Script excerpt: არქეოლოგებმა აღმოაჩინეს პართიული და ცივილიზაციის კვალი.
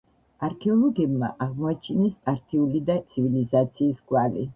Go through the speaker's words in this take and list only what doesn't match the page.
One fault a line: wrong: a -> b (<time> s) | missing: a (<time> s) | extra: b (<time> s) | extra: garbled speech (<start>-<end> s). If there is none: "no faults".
no faults